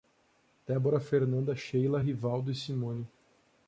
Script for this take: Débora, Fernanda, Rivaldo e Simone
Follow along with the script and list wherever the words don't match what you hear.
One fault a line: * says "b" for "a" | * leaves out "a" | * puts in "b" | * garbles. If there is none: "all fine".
* puts in "Sheila"